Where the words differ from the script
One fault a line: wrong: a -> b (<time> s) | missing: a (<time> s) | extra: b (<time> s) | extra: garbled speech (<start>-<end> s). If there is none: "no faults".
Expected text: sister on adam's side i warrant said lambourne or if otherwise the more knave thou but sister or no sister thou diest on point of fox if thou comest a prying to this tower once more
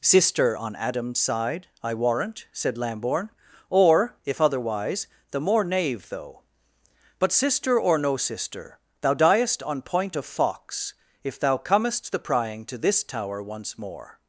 wrong: thou -> though (6.1 s)
wrong: a -> the (12.1 s)